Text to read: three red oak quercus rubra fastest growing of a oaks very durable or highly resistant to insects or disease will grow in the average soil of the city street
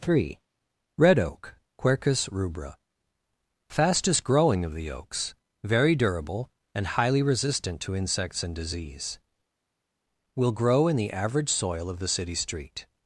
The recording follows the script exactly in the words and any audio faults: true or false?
false